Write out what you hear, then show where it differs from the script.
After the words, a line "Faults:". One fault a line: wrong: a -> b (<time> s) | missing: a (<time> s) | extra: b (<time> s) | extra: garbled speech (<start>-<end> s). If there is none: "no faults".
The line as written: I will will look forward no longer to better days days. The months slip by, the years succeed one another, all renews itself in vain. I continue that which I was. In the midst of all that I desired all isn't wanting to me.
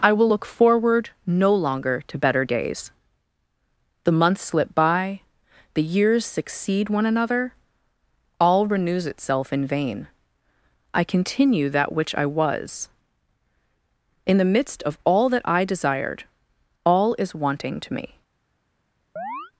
I will look forward no longer to better days. The months slip by, the years succeed one another, all renews itself in vain. I continue that which I was. In the midst of all that I desired all is wanting to me.
Faults:
missing: will (0.3 s)
missing: days (2.9 s)
wrong: isn't -> is (17.2 s)